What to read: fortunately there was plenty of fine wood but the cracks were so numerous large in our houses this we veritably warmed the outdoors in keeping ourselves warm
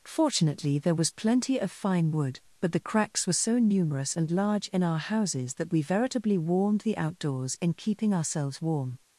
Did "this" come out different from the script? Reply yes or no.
yes